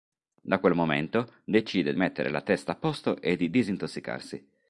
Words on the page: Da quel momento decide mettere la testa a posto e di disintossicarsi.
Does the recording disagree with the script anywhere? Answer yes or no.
no